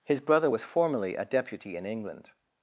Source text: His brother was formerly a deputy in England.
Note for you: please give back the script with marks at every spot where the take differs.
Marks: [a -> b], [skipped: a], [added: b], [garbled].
His brother was formerly a deputy in England.